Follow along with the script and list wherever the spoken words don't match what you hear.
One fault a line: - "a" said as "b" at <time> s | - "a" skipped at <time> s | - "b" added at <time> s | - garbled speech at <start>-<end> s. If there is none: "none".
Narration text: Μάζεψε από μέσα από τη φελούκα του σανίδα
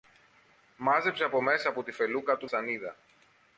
none